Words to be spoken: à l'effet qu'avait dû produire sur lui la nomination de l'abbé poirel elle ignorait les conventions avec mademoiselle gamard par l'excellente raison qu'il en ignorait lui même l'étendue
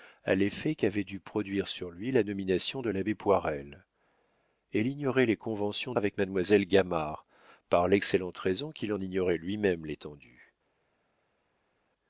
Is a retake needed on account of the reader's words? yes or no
no